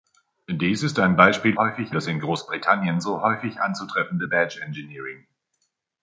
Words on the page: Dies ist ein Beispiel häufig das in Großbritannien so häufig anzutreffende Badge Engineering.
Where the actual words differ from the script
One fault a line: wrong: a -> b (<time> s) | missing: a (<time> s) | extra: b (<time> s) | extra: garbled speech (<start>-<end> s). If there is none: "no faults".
no faults